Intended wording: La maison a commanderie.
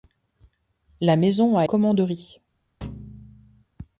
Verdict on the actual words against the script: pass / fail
pass